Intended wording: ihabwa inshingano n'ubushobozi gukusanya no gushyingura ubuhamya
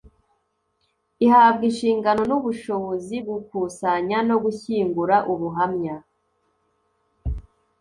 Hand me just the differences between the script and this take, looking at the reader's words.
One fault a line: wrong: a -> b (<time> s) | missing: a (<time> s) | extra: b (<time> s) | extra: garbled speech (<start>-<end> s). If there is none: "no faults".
no faults